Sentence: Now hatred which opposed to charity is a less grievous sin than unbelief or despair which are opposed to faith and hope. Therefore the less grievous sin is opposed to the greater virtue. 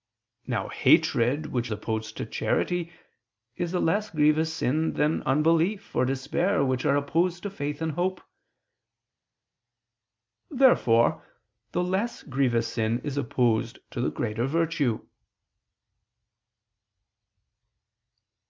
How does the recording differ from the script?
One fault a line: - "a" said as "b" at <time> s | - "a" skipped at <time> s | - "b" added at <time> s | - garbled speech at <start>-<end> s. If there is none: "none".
none